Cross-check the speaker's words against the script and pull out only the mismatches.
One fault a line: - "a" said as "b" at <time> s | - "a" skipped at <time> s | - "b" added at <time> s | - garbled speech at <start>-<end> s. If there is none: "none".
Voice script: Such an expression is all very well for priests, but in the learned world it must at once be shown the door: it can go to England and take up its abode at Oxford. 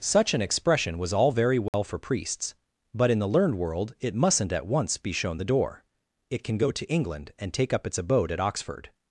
- "is" said as "was" at 1.0 s
- "must" said as "mustn't" at 4.2 s